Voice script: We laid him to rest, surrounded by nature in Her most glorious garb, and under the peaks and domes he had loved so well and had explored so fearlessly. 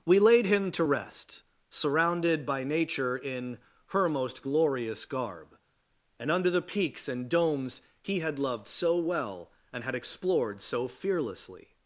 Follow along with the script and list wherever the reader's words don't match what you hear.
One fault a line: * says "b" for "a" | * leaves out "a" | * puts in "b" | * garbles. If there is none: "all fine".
all fine